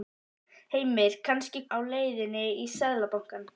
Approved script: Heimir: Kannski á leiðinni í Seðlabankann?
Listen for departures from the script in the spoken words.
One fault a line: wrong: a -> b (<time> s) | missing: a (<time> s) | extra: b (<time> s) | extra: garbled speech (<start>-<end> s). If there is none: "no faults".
no faults